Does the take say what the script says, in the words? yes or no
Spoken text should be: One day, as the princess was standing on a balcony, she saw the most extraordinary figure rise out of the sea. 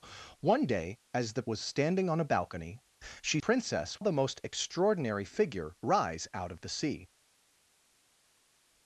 no